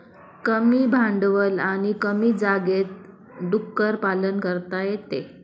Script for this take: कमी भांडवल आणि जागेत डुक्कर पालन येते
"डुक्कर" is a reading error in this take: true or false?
false